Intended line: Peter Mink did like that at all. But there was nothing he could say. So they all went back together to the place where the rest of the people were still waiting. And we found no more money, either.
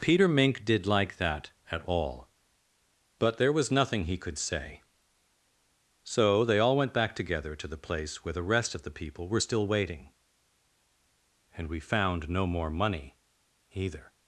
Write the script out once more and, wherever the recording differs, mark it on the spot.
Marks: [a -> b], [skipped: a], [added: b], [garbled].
Peter Mink did like that at all. But there was nothing he could say. So they all went back together to the place where the rest of the people were still waiting. And we found no more money, either.